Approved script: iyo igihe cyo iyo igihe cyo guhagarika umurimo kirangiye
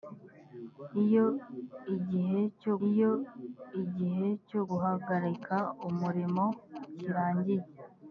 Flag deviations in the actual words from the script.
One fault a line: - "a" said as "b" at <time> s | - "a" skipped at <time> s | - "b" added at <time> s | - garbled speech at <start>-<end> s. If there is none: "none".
none